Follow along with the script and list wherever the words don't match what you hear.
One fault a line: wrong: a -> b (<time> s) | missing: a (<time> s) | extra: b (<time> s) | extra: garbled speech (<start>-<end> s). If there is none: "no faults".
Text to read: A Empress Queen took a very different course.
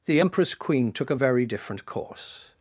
wrong: A -> The (0.1 s)